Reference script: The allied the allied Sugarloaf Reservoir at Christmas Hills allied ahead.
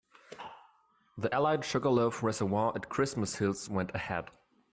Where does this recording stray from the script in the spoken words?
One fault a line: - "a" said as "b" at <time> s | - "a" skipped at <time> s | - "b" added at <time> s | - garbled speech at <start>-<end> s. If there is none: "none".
- "the allied" skipped at 1.7 s
- "allied" said as "went" at 3.7 s